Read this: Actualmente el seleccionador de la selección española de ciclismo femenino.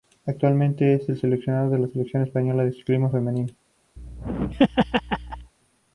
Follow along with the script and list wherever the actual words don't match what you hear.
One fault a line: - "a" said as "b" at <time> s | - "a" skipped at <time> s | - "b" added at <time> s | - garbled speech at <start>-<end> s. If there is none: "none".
- "es" added at 0.9 s